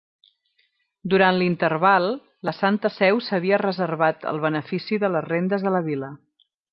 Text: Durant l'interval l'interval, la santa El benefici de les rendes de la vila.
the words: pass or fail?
fail